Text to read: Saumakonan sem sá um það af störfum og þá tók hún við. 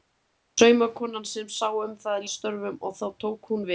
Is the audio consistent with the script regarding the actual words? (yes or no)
yes